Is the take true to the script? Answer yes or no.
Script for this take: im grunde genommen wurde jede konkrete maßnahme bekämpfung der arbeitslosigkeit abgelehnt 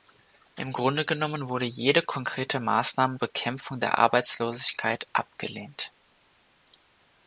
yes